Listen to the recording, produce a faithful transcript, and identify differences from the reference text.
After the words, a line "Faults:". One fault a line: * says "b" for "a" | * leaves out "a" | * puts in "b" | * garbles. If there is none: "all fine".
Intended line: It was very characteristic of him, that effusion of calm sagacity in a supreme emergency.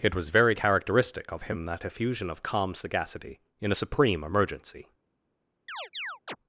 It was very characteristic of him, that effusion of calm sagacity in a supreme emergency.
Faults:
all fine